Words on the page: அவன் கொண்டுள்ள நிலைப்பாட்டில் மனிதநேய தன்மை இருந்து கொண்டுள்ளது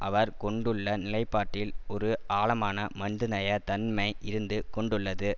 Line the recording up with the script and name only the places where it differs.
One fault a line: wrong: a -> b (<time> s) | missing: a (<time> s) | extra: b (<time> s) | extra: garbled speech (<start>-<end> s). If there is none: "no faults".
wrong: அவன் -> அவர் (0.0 s)
extra: ஒரு ஆழமான (1.9 s)